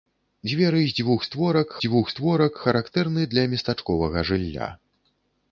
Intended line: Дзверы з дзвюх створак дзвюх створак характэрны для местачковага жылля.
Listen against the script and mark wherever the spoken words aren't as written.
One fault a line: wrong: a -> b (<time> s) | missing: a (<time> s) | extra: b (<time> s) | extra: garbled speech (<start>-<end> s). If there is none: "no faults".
no faults